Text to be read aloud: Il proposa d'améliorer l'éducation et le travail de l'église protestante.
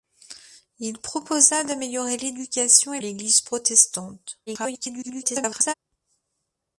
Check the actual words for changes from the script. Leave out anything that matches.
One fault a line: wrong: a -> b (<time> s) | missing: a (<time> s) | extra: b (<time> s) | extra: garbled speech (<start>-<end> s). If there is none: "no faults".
missing: le travail de (3.0 s)
extra: garbled speech (4.5-5.7 s)